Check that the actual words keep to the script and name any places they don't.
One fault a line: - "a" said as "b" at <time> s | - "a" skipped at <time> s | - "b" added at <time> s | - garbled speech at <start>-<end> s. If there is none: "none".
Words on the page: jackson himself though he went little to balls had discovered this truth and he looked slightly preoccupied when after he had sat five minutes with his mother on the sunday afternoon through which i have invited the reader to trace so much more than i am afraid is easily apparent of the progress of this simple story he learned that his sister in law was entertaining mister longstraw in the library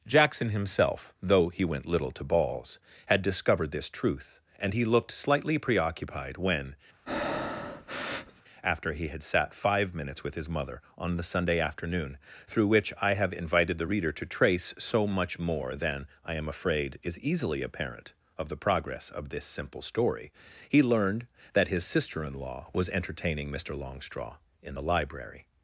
none